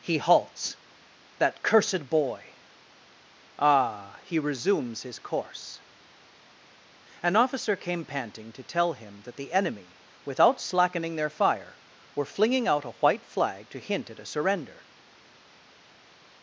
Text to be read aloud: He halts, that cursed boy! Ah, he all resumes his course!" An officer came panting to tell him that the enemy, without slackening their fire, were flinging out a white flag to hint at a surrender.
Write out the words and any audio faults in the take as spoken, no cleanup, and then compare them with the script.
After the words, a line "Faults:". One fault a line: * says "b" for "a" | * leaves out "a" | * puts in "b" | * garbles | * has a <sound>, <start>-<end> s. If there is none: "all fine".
He halts, that cursed boy! Ah, he resumes his course!" An officer came panting to tell him that the enemy, without slackening their fire, were flinging out a white flag to hint at a surrender.
Faults:
* leaves out "all"